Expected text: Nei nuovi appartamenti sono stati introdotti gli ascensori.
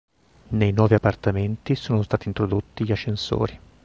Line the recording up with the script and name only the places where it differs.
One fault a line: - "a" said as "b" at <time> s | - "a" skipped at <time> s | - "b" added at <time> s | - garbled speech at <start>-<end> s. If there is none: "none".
none